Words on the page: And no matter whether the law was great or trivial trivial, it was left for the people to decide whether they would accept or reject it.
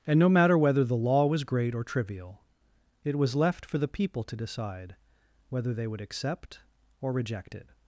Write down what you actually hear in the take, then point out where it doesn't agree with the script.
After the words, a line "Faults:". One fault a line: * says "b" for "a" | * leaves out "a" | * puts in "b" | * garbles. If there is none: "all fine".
And no matter whether the law was great or trivial, it was left for the people to decide whether they would accept or reject it.
Faults:
* leaves out "trivial"